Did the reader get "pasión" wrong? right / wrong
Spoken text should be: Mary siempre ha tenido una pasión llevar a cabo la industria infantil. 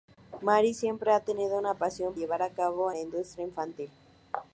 right